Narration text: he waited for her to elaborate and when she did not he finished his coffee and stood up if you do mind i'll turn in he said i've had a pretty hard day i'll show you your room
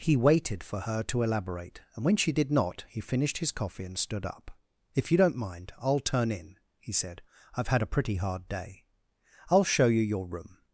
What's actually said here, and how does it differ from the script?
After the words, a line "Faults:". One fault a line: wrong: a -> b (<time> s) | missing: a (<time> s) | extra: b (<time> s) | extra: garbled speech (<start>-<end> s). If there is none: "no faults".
he waited for her to elaborate and when she did not he finished his coffee and stood up if you don't mind i'll turn in he said i've had a pretty hard day i'll show you your room
Faults:
wrong: do -> don't (5.2 s)